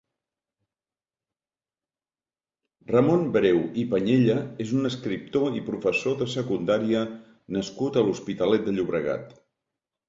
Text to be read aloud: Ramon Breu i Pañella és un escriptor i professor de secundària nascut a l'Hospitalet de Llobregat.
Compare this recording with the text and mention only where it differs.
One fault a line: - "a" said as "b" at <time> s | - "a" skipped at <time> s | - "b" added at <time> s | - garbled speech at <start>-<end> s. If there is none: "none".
none